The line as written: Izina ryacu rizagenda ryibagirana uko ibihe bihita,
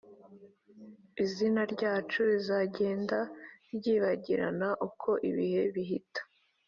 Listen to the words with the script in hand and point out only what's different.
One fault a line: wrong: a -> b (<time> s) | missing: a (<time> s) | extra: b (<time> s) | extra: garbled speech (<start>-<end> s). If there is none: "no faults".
no faults